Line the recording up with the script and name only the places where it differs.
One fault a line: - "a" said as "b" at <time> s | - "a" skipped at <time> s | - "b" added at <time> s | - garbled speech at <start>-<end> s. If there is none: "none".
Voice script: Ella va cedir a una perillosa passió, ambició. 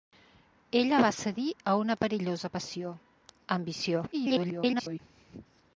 - garbled speech at 4.1-5.0 s